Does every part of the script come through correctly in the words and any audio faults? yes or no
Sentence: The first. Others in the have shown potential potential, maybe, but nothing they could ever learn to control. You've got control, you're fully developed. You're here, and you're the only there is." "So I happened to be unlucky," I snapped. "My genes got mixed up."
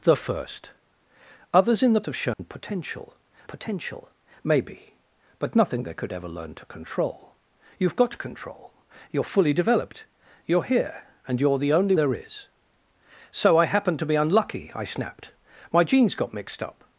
no